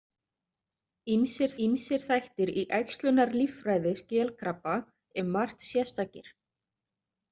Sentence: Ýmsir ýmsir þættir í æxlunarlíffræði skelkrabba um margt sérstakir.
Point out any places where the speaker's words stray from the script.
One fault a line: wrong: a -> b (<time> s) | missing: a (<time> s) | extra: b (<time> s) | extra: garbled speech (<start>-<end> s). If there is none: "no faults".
no faults